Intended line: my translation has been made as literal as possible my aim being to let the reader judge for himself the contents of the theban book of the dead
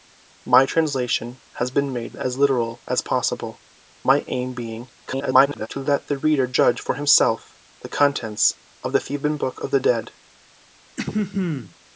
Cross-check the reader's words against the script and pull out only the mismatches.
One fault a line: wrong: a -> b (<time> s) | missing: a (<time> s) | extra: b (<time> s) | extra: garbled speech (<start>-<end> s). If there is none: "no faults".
extra: garbled speech (5.1-5.7 s)